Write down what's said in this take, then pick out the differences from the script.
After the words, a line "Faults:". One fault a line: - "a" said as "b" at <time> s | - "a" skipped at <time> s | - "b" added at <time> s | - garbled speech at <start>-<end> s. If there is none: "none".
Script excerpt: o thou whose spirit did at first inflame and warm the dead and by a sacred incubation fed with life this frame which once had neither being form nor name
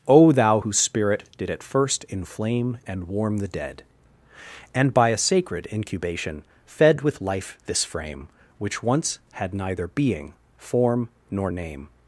o thou whose spirit did at first inflame and warm the dead and by a sacred incubation fed with life this frame which once had neither being form nor name
Faults:
none